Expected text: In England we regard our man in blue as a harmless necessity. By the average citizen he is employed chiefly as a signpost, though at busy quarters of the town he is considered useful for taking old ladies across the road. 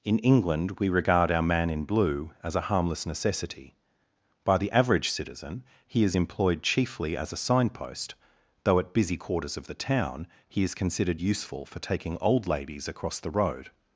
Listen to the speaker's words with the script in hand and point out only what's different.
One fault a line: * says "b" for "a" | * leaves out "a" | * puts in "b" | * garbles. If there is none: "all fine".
all fine